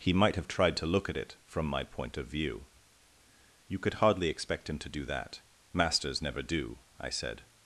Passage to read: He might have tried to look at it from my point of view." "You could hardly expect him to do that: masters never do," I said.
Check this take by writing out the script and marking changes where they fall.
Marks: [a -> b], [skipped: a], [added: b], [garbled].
He might have tried to look at it from my point of view." "You could hardly expect him to do that: masters never do," I said.